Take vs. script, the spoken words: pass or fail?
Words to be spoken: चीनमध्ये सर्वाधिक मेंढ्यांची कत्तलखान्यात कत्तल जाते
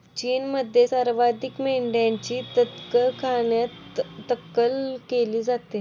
fail